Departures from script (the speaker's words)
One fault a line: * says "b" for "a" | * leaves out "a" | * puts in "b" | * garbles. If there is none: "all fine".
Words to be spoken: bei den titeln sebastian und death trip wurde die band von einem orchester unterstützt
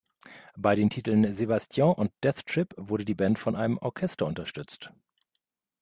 all fine